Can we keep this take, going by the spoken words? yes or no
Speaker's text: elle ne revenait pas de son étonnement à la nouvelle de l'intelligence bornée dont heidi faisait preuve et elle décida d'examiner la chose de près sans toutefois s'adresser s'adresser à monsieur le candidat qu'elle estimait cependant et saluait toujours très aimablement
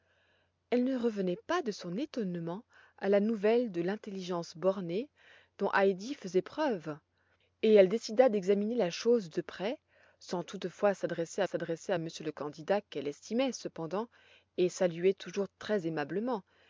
yes